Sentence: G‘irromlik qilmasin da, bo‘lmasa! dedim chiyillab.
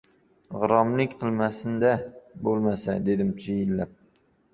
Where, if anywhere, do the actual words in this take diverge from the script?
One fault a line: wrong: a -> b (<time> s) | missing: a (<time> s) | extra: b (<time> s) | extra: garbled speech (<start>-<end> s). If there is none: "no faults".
no faults